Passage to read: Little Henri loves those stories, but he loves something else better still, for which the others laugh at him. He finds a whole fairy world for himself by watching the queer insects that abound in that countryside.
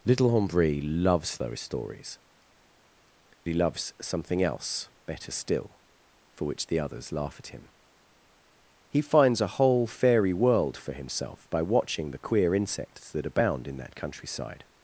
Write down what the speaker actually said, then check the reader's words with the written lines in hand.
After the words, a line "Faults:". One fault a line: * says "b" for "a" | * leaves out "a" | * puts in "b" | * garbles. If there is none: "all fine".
Little Henri loves those stories, he loves something else better still, for which the others laugh at him. He finds a whole fairy world for himself by watching the queer insects that abound in that countryside.
Faults:
* leaves out "but"